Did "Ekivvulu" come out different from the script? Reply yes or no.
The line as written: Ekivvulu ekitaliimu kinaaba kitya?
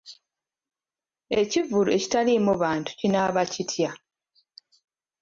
no